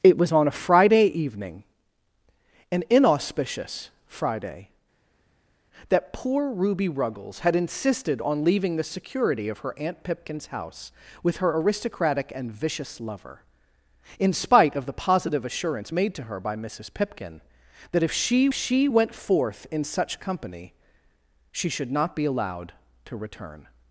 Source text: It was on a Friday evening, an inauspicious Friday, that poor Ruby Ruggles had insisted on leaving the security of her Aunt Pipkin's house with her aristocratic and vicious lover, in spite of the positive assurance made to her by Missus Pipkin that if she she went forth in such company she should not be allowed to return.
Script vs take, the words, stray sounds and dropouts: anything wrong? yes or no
no